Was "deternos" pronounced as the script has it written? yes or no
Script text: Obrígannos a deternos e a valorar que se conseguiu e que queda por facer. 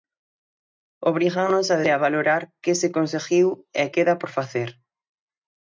no